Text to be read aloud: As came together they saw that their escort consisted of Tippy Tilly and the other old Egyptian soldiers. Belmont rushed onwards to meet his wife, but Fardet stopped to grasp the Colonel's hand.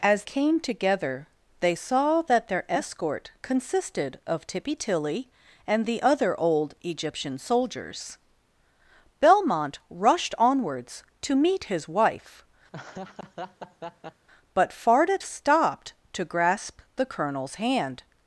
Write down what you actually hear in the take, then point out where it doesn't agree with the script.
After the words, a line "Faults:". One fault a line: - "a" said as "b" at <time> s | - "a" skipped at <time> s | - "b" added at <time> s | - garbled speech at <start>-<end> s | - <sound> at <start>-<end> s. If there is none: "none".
As came together they saw that their escort consisted of Tippy Tilly and the other old Egyptian soldiers. Belmont rushed onwards to meet his wife, but Fardet stopped to grasp the Colonel's hand.
Faults:
- laugh at 12.7-14.3 s